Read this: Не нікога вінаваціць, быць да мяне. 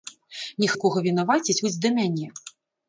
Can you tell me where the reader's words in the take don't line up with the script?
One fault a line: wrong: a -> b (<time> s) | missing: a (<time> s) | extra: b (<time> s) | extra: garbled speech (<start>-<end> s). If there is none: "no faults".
no faults